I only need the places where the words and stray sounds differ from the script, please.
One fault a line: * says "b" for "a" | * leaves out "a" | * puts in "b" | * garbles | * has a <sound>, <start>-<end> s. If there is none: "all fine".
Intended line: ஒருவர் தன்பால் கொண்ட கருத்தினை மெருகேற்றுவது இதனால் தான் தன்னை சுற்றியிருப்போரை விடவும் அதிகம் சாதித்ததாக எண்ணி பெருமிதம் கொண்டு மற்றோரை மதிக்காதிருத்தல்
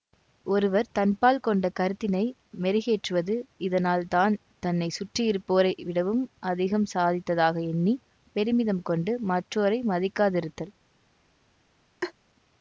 * has a laugh, 12.0-12.1 s